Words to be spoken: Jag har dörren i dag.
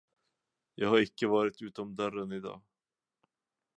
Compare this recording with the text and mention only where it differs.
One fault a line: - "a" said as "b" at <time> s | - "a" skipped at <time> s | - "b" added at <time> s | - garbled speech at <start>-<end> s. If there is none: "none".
- "icke varit utom" added at 1.0 s